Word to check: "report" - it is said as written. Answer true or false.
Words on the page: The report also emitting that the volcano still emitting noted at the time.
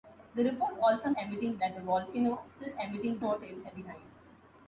true